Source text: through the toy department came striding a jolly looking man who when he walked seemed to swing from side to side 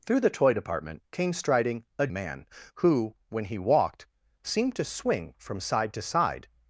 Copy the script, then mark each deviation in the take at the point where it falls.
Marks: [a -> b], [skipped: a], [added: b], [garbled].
through the toy department came striding a [skipped: jolly looking] man who when he walked seemed to swing from side to side